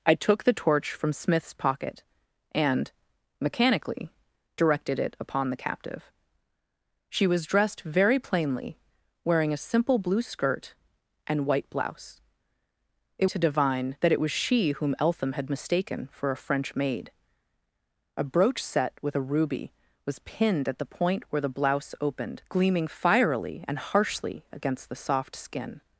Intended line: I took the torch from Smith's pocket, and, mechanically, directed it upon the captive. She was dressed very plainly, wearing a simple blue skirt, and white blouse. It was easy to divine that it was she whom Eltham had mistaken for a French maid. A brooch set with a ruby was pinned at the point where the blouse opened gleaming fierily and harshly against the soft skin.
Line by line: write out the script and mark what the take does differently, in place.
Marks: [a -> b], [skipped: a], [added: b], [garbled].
I took the torch from Smith's pocket, and, mechanically, directed it upon the captive. She was dressed very plainly, wearing a simple blue skirt, and white blouse. It [skipped: was easy] to divine that it was she whom Eltham had mistaken for a French maid. A brooch set with a ruby was pinned at the point where the blouse opened gleaming fierily and harshly against the soft skin.